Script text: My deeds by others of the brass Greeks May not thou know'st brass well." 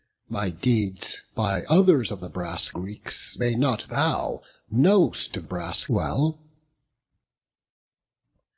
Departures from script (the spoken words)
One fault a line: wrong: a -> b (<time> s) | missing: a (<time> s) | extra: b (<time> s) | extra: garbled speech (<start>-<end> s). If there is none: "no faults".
no faults